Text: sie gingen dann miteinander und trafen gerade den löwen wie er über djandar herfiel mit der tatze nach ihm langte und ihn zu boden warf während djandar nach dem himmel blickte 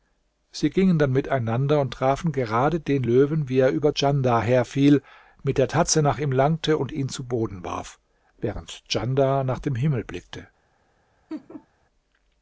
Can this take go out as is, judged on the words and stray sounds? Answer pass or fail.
fail